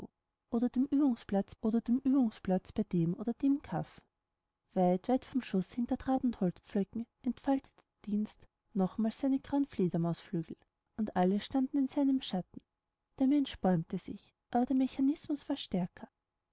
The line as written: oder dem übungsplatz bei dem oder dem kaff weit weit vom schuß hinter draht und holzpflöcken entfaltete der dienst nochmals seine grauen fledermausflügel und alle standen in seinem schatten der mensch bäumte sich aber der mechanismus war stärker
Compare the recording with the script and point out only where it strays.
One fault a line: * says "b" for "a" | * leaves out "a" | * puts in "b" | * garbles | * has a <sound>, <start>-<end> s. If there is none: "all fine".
* puts in "oder dem übungsplatz"